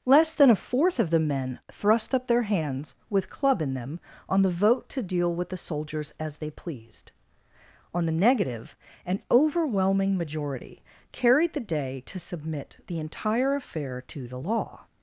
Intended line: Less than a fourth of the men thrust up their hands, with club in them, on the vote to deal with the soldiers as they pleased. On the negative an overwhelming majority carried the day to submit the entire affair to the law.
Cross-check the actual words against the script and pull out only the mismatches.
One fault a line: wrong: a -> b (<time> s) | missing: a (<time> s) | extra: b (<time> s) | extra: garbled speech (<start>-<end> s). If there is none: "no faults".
no faults